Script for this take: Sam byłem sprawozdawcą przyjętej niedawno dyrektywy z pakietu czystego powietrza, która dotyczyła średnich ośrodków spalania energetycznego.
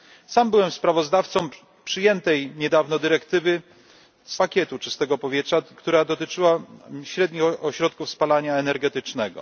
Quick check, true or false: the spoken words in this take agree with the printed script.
true